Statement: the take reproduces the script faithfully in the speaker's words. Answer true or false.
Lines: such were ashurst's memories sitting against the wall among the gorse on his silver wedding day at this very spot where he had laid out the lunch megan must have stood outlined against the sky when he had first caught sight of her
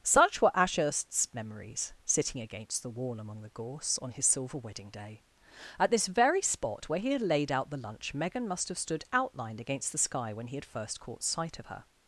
true